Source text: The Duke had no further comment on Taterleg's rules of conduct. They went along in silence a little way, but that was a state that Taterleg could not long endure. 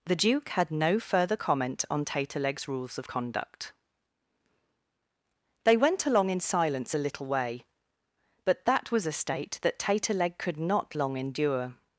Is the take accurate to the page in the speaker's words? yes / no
yes